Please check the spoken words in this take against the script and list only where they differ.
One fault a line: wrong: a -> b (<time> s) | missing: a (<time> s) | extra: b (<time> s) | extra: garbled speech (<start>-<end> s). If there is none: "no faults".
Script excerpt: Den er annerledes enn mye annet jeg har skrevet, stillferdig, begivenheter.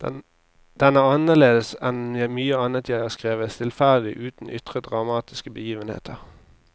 extra: uten ytre dramatiske (4.2 s)